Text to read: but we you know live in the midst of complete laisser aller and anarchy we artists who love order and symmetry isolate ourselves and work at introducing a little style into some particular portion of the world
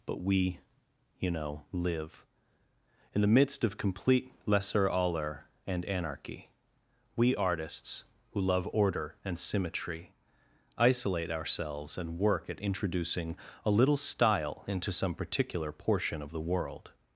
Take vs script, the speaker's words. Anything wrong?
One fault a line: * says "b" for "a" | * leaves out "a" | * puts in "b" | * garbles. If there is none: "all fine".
all fine